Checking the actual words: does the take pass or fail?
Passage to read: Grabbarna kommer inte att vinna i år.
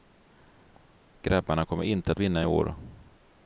pass